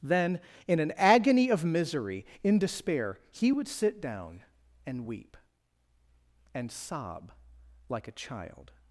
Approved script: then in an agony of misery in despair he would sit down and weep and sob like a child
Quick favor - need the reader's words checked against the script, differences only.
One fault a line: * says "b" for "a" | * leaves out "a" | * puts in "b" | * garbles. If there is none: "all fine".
all fine